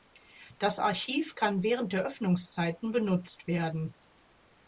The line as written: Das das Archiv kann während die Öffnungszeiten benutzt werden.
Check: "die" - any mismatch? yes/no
yes